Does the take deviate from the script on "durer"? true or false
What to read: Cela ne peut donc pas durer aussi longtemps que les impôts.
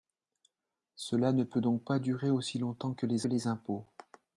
false